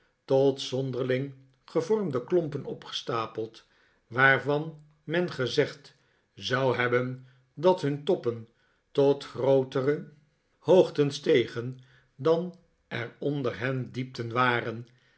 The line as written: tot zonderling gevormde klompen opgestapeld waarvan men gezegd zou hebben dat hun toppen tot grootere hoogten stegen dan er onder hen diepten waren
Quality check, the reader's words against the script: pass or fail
pass